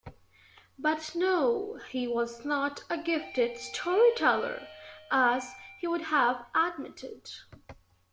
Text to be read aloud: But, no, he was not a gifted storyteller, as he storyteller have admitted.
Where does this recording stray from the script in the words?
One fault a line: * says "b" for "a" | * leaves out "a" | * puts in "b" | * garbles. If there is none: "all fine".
* says "would" for "storyteller"